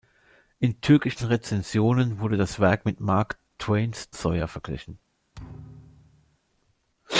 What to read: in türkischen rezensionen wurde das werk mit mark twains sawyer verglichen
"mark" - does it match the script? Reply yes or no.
yes